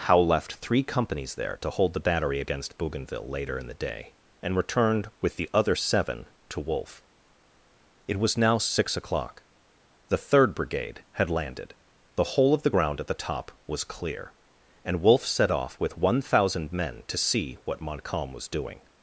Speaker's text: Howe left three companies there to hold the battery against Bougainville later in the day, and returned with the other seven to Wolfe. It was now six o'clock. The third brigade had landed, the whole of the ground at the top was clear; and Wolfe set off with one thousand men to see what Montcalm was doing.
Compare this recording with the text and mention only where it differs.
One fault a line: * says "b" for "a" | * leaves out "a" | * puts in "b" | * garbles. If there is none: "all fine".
all fine